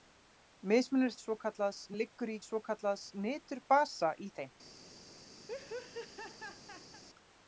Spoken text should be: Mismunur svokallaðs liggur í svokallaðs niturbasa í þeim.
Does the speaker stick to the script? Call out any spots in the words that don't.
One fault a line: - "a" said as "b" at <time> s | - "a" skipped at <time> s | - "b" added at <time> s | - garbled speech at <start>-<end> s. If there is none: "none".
none